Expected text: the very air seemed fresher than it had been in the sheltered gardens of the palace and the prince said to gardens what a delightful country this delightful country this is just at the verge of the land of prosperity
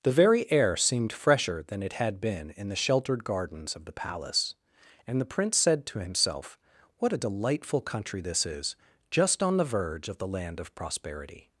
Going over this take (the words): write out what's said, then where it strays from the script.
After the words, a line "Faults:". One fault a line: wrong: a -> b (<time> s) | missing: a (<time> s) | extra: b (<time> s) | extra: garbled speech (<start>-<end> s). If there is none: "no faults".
the very air seemed fresher than it had been in the sheltered gardens of the palace and the prince said to himself what a delightful country this is just on the verge of the land of prosperity
Faults:
wrong: gardens -> himself (6.0 s)
missing: delightful country this (8.4 s)
wrong: at -> on (9.4 s)